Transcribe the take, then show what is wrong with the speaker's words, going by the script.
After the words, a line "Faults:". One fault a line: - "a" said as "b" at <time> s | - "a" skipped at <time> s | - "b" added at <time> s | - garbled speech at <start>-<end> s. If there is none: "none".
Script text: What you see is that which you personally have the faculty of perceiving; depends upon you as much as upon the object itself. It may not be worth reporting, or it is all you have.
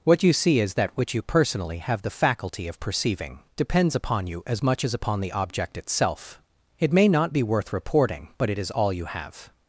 What you see is that which you personally have the faculty of perceiving; depends upon you as much as upon the object itself. It may not be worth reporting, but it is all you have.
Faults:
- "or" said as "but" at 8.4 s